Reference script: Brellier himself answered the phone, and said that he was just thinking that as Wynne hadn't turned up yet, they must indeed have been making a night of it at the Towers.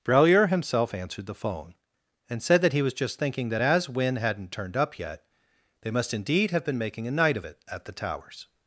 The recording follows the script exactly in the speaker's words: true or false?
true